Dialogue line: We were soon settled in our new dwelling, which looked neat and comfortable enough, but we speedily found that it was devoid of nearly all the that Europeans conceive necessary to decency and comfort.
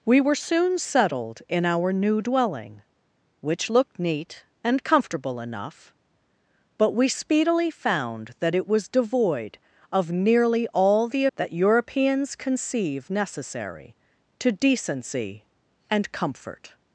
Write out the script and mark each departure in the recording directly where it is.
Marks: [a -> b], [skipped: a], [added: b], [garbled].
We were soon settled in our new dwelling, which looked neat and comfortable enough, but we speedily found that it was devoid of nearly all the that Europeans conceive necessary to decency and comfort.